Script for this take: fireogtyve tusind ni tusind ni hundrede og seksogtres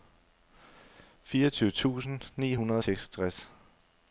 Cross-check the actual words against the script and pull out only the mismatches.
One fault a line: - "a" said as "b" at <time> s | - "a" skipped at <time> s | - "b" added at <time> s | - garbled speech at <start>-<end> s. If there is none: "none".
- "tusind ni" skipped at 2.5 s